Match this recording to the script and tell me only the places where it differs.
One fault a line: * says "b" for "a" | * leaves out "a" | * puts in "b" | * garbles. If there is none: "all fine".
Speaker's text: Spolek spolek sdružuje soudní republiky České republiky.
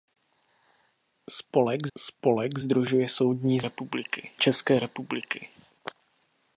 all fine